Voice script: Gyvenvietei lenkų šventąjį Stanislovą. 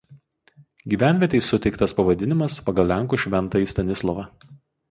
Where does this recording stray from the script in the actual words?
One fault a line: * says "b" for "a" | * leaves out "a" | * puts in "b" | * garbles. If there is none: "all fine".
* puts in "suteiktas pavadinimas pagal"